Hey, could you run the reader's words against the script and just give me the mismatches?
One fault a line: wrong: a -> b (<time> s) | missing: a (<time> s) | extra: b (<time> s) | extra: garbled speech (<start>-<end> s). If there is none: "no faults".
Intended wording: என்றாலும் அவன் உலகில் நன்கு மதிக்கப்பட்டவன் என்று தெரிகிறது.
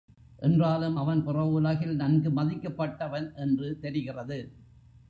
extra: புற (1.2 s)